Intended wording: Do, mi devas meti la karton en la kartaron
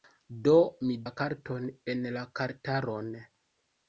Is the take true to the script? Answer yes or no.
no